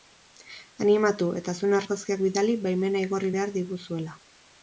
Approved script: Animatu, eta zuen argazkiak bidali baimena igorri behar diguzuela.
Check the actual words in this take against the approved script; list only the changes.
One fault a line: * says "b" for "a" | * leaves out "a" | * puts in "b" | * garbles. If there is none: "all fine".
all fine